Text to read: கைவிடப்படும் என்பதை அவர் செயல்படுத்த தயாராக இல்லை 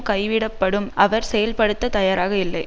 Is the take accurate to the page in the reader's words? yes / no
no